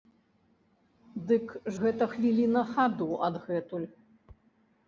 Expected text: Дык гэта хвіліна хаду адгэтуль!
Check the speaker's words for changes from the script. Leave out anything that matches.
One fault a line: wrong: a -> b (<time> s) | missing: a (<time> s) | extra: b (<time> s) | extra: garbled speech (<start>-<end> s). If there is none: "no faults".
no faults